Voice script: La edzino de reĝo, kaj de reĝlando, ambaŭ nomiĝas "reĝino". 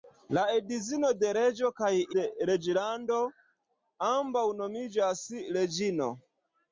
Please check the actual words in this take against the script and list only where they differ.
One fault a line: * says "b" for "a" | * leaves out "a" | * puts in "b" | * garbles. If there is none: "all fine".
all fine